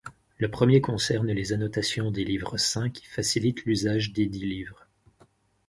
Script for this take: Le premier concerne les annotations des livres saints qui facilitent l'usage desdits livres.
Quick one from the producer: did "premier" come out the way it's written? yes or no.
yes